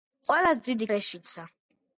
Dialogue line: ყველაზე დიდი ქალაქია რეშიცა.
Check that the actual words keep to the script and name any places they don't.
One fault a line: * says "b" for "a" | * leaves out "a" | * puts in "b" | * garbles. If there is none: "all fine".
* leaves out "ქალაქია"